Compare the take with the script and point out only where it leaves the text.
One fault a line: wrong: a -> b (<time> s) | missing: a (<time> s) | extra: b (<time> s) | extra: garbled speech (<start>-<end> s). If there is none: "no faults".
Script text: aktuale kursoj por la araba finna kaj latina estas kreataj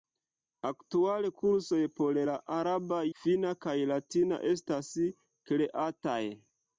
no faults